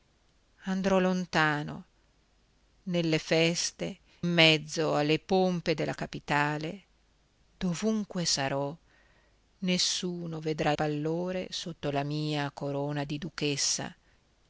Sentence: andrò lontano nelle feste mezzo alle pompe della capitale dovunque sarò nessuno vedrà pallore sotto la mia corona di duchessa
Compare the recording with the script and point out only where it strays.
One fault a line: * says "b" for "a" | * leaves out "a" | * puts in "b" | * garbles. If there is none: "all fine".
all fine